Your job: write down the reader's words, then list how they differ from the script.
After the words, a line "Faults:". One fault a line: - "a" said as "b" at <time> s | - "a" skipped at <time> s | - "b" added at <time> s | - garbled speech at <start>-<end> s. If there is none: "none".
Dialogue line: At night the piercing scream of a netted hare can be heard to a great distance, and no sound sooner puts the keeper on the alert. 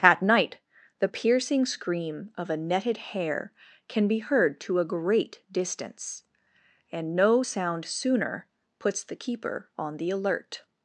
At night the piercing scream of a netted hare can be heard to a great distance, and no sound sooner puts the keeper on the alert.
Faults:
none